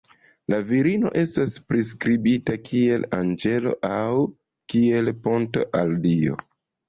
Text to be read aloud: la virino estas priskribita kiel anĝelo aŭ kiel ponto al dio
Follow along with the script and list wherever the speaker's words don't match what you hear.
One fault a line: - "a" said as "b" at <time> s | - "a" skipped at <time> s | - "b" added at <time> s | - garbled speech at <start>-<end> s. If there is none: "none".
none